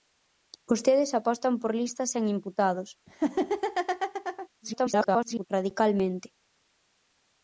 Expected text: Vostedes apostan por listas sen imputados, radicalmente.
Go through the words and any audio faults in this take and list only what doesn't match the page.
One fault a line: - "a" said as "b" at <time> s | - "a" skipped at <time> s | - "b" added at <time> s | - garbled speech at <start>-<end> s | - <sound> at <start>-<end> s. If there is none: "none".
- laugh at 3.1-4.5 s
- garbled speech at 4.6-5.5 s